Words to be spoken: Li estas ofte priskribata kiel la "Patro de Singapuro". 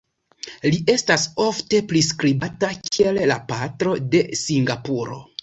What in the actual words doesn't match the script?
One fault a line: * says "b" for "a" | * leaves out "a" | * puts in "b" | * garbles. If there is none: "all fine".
all fine